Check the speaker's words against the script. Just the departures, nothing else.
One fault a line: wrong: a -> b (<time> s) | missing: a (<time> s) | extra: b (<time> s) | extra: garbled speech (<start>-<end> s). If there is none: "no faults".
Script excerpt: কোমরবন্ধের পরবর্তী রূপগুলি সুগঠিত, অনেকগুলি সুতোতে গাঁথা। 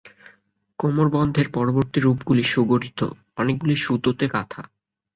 no faults